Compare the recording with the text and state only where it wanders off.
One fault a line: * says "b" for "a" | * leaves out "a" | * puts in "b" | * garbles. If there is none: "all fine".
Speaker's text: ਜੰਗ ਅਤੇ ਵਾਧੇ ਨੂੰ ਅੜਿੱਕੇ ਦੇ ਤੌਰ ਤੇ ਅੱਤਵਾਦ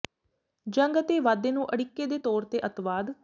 all fine